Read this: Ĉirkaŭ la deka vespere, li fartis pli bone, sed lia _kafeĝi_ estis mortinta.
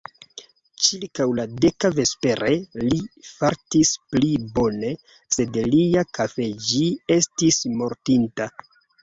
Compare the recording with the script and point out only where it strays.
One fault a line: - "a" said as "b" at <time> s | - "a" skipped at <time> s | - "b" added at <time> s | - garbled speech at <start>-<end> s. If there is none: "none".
none